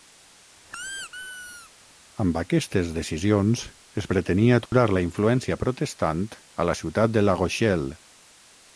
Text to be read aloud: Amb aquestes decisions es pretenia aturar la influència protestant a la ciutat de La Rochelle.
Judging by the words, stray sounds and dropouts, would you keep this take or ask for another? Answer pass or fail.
fail